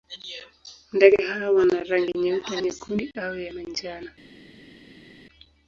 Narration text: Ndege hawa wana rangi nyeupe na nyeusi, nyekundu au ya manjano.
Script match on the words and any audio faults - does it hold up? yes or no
no